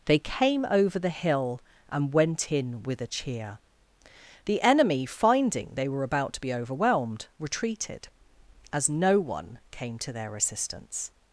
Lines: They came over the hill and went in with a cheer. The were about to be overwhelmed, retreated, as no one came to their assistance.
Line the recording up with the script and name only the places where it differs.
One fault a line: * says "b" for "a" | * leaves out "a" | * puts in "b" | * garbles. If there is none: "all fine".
* puts in "enemy finding they"